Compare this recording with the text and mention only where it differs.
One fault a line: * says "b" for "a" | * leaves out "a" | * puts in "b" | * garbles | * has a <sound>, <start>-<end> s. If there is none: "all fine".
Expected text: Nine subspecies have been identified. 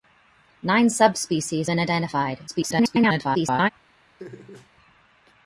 * leaves out "have"
* garbles
* has a laugh, 4.2-4.7 s